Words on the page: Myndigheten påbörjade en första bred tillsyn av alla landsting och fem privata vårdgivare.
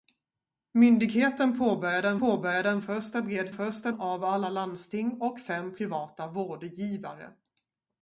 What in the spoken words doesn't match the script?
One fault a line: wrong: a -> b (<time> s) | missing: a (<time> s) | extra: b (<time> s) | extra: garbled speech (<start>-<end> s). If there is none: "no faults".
extra: påbörjade en (2.2 s)
wrong: tillsyn -> första (3.5 s)